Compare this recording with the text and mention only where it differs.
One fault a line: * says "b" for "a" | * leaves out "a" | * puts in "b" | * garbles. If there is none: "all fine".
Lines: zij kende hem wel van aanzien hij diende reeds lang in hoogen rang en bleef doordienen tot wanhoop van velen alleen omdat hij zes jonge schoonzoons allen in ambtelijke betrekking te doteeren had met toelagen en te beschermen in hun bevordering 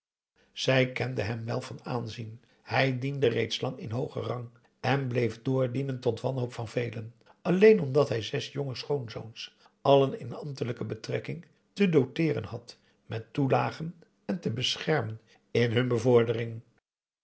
all fine